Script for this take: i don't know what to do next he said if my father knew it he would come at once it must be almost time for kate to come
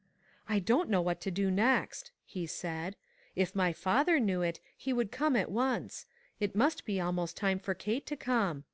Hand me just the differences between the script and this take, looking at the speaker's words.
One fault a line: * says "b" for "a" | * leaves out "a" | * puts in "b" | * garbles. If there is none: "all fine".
all fine